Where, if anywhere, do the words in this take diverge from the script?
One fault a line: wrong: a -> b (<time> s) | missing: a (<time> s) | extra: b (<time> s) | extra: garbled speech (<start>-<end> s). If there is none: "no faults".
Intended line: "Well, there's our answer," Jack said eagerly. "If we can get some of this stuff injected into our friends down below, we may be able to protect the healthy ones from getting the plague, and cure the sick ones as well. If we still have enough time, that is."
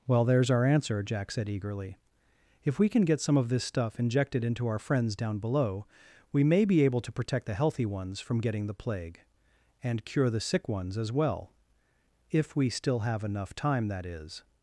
no faults